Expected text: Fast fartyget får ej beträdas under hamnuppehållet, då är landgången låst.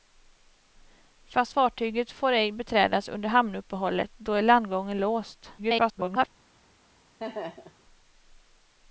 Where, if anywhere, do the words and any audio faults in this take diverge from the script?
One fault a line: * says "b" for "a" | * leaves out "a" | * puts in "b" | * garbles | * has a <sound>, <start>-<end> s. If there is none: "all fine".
* garbles
* has a laugh, 7.2-7.8 s